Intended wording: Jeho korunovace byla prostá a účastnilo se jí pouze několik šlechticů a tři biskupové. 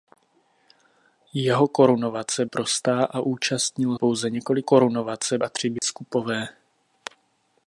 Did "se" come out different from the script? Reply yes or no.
yes